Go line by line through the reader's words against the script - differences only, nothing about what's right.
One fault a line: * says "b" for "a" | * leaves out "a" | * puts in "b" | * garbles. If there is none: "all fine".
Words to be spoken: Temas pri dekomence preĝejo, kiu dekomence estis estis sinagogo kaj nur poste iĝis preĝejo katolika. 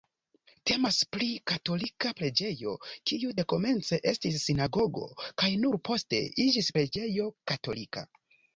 * says "katolika" for "dekomence"
* leaves out "estis"